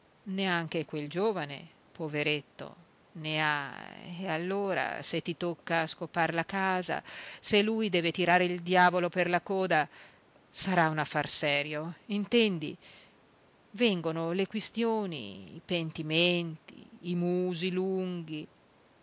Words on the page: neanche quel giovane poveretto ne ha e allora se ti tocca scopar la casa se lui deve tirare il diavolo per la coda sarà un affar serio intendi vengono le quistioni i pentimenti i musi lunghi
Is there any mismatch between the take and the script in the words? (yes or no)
no